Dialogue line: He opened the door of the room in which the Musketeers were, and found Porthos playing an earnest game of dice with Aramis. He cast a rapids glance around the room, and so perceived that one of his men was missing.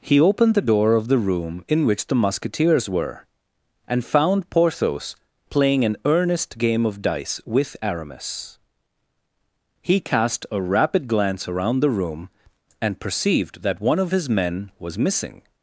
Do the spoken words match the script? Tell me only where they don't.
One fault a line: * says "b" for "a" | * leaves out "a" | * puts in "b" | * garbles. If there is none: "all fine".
* says "rapid" for "rapids"
* leaves out "so"